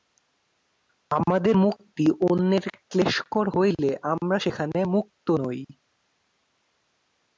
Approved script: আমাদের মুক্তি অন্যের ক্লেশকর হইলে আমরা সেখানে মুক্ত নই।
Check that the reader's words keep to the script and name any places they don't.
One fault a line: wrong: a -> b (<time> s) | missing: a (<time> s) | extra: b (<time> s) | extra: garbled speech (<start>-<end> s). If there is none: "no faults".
no faults